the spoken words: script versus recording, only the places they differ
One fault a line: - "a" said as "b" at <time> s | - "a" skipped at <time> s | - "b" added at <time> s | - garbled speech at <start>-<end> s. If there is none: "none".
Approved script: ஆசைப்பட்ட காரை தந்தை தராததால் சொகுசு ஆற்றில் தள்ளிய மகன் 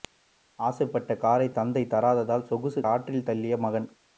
none